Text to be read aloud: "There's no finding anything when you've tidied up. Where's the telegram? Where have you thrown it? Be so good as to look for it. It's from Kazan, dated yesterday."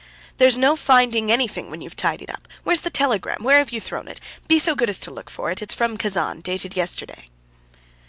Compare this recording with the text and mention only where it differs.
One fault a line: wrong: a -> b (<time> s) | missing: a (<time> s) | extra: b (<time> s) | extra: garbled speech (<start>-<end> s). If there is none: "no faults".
no faults